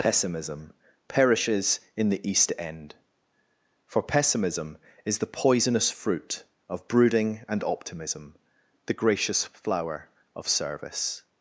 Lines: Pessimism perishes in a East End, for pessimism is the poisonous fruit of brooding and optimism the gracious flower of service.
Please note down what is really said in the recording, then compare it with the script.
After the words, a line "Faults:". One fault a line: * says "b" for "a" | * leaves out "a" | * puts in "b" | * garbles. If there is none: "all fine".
Pessimism perishes in the East End, for pessimism is the poisonous fruit of brooding and optimism the gracious flower of service.
Faults:
* says "the" for "a"